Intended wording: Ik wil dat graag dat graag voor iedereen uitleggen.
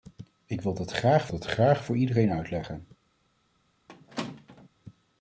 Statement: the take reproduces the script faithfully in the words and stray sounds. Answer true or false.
false